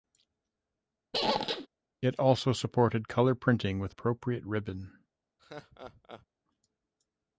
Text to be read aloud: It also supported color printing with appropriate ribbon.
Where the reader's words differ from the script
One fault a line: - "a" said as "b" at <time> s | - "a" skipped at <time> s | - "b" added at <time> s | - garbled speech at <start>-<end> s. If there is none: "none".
none